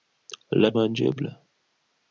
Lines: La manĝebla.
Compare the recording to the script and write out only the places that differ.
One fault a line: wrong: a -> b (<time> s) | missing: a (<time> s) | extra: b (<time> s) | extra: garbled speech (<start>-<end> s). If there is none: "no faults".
no faults